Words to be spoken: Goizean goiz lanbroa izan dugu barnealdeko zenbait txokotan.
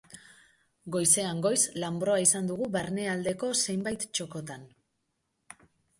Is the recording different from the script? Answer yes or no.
no